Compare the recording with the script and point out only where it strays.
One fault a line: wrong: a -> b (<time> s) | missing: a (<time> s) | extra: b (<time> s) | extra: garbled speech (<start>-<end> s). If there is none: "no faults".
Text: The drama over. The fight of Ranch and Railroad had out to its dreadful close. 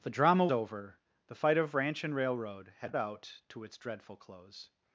no faults